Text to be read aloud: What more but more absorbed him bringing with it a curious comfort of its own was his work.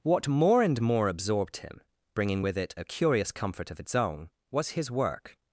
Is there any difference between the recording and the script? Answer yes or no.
yes